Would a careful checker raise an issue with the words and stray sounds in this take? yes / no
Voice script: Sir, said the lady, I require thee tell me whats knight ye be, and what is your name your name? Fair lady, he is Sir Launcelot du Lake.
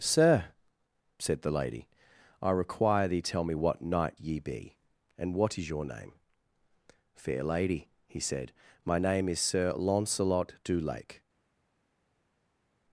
yes